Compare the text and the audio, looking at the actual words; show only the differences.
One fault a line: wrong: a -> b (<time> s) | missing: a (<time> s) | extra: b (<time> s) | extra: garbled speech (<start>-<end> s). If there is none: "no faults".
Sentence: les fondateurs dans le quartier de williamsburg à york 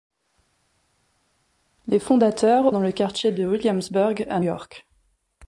no faults